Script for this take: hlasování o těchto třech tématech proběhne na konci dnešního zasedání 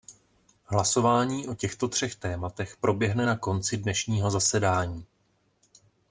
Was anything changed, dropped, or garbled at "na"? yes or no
no